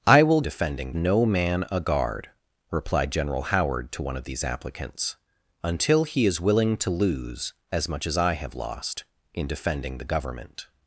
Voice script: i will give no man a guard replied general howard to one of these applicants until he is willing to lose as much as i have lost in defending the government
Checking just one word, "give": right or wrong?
wrong